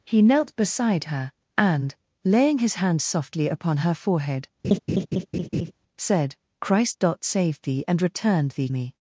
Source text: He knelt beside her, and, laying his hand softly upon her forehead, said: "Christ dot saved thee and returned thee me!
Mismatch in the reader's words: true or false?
false